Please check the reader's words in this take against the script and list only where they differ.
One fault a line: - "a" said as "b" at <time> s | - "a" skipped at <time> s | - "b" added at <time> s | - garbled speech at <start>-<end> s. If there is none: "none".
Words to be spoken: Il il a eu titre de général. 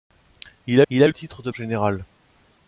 none